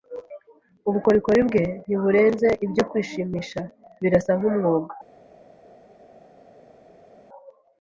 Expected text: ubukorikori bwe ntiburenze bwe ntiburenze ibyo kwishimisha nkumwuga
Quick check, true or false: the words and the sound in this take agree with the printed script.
false